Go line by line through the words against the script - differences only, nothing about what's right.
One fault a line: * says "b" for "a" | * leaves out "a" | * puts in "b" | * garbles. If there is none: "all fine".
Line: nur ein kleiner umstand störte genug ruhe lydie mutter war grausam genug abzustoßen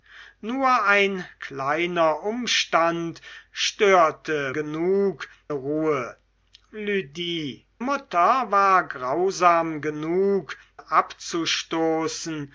all fine